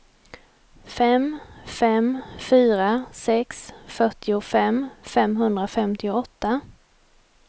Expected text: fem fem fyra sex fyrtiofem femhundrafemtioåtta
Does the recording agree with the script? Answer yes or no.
yes